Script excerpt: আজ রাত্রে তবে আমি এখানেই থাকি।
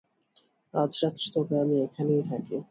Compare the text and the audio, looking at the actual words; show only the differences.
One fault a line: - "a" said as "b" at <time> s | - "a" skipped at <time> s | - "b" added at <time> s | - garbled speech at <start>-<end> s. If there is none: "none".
none